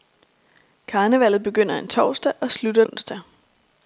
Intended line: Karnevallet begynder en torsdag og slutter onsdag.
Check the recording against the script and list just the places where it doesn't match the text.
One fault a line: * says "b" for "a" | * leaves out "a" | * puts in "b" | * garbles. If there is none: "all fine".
all fine